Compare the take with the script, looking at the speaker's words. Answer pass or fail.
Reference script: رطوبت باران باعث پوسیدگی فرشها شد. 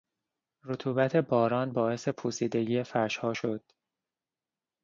pass